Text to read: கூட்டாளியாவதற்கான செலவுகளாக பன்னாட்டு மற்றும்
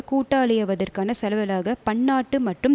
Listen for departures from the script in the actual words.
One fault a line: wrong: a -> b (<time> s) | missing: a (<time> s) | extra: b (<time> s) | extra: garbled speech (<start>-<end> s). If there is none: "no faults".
no faults